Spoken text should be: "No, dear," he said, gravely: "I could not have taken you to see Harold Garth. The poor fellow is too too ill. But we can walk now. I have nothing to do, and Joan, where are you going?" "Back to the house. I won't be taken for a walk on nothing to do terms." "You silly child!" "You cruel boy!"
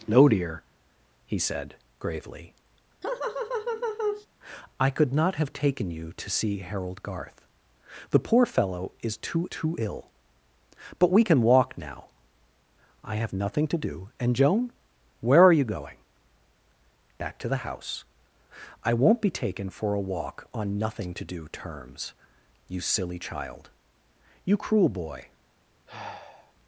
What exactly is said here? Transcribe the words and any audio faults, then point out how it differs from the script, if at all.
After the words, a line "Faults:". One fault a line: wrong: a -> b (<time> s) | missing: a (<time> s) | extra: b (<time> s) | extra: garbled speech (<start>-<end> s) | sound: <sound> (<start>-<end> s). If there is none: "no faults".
"No, dear," he said, gravely: "I could not have taken you to see Harold Garth. The poor fellow is too too ill. But we can walk now. I have nothing to do, and Joan, where are you going?" "Back to the house. I won't be taken for a walk on nothing to do terms." "You silly child!" "You cruel boy!"
Faults:
sound: laugh (3.0-4.3 s)
sound: sigh (25.9-26.5 s)